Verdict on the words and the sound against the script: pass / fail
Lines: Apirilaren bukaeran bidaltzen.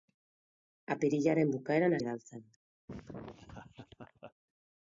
fail